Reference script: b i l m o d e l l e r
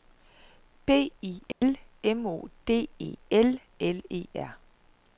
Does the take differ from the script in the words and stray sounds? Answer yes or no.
yes